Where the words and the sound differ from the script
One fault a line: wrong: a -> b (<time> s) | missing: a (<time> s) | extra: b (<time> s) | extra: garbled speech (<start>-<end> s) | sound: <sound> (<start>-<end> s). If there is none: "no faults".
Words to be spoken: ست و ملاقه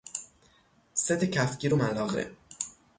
extra: کفگیر (1.2 s)